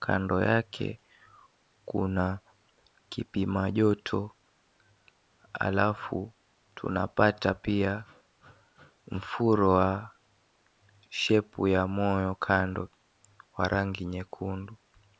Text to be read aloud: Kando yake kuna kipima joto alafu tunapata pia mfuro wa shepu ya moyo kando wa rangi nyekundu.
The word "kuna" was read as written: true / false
true